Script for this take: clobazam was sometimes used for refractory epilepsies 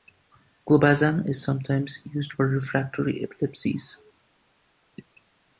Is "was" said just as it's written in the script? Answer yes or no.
no